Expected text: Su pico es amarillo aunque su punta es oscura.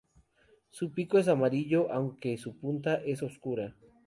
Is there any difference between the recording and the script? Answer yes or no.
no